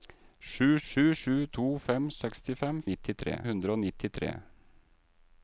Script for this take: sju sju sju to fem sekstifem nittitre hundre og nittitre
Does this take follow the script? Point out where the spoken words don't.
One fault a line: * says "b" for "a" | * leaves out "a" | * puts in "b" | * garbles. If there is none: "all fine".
all fine